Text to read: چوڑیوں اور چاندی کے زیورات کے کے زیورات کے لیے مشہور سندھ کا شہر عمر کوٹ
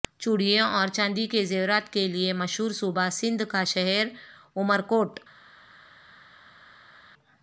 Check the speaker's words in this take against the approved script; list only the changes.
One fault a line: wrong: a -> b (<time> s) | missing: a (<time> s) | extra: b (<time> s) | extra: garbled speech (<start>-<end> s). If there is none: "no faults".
missing: کے زیورات کے (2.1 s)
extra: صوبہ (2.7 s)